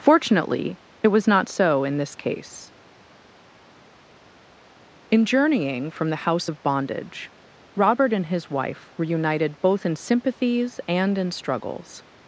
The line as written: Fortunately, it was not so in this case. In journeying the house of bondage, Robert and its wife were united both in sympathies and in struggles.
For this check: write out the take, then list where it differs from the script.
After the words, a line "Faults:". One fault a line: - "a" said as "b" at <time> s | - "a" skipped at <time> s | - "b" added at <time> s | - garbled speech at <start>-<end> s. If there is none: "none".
Fortunately, it was not so in this case. In journeying from the house of bondage, Robert and his wife were united both in sympathies and in struggles.
Faults:
- "from" added at 5.9 s
- "its" said as "his" at 8.3 s